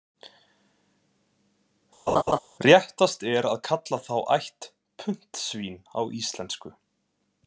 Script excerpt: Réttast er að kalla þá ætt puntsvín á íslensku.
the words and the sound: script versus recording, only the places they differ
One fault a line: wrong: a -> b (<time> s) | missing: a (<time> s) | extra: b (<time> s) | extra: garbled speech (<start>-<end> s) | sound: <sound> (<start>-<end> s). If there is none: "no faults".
sound: laugh (2.1-2.4 s)